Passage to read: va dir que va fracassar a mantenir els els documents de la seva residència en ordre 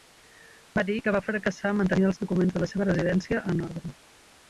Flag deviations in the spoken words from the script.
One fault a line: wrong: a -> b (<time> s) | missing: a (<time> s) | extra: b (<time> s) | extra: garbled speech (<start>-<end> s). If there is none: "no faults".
missing: els (2.2 s)